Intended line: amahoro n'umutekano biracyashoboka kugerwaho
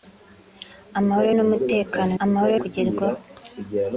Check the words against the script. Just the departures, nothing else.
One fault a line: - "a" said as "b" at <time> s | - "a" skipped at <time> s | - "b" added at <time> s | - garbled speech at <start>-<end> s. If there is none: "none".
- "biracyashoboka" said as "amahoro" at 2.2 s